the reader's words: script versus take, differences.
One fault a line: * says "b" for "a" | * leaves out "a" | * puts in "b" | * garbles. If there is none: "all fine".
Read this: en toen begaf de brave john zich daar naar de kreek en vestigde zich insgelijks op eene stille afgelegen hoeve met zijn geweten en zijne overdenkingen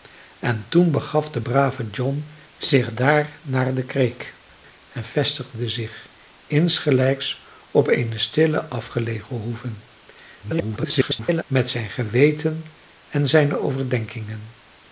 * garbles